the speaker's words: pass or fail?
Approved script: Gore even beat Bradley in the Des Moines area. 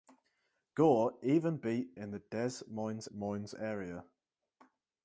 fail